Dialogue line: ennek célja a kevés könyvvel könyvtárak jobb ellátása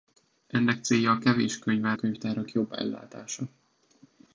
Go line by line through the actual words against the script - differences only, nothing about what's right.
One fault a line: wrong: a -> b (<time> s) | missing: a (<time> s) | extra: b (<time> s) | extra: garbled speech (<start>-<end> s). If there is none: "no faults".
no faults